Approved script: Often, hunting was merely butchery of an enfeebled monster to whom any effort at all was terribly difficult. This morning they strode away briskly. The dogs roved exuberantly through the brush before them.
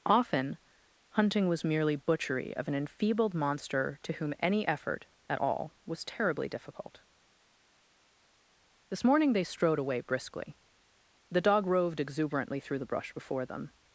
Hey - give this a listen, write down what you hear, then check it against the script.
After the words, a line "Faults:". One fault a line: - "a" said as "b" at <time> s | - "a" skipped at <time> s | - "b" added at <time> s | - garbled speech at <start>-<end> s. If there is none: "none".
Often, hunting was merely butchery of an enfeebled monster to whom any effort at all was terribly difficult. This morning they strode away briskly. The dog roved exuberantly through the brush before them.
Faults:
- "dogs" said as "dog" at 11.4 s